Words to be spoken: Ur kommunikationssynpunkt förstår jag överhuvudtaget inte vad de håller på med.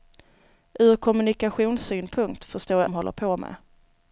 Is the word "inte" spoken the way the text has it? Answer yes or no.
no